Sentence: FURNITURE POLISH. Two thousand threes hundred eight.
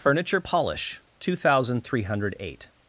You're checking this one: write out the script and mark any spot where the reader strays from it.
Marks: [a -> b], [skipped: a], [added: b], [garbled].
FURNITURE POLISH. Two thousand [threes -> three] hundred eight.